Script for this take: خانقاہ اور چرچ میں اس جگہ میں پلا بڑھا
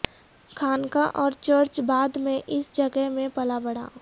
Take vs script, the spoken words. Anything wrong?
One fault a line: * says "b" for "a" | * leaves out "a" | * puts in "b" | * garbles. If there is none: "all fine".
* puts in "بعد"